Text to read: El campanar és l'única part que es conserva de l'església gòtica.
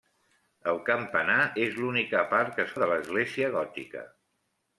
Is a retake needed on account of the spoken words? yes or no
yes